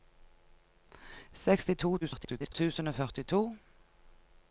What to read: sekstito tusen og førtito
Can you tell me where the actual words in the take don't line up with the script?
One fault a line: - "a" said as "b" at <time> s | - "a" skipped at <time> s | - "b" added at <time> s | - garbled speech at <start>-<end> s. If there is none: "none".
- garbled speech at 2.0-2.5 s